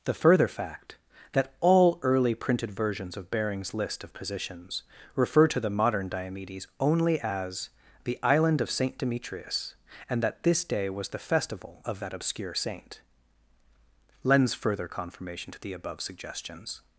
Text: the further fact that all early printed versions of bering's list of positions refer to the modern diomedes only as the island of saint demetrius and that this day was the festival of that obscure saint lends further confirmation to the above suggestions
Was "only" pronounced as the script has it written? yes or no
yes